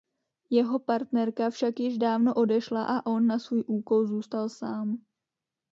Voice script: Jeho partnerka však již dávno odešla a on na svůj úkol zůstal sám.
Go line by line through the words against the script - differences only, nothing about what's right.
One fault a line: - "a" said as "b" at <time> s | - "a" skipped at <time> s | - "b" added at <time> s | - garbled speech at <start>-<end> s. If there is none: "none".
none